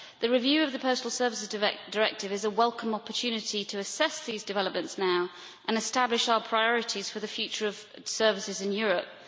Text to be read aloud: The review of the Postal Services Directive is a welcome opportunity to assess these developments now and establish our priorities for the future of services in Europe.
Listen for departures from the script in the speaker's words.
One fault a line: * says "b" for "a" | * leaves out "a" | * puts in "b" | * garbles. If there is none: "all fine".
all fine